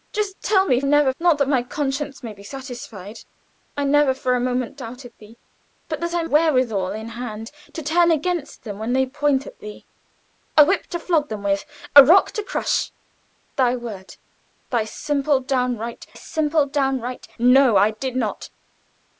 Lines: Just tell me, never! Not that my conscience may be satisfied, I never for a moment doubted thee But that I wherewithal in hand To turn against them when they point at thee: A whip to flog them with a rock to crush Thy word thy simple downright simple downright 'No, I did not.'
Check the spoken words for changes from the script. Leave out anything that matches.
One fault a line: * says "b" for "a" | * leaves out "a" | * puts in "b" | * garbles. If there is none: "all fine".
all fine